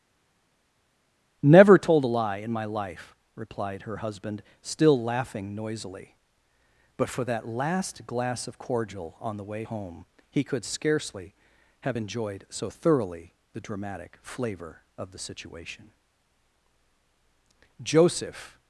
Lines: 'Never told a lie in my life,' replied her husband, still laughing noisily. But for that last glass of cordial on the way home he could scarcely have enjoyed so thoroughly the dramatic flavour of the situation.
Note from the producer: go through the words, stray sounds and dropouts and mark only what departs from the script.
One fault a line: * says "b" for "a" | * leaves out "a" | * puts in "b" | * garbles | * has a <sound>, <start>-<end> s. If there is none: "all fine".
* puts in "Joseph"